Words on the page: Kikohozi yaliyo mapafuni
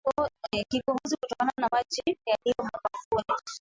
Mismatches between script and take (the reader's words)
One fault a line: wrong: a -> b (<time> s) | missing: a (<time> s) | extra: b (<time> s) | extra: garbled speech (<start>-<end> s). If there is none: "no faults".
extra: kutokana na maji (1.2 s)